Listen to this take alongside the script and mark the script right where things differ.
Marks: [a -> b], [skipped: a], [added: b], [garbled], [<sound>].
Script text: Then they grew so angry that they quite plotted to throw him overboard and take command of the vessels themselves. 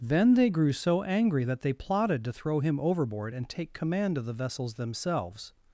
Then they grew so angry that they [skipped: quite] plotted to throw him overboard and take command of the vessels themselves.